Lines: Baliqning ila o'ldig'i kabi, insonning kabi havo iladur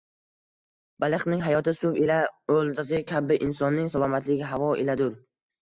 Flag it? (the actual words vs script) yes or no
yes